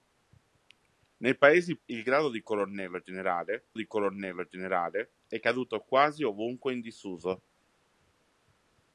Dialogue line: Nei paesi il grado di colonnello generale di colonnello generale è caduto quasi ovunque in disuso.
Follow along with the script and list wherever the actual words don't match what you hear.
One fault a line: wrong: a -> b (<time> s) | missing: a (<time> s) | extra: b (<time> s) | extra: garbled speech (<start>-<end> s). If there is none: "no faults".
no faults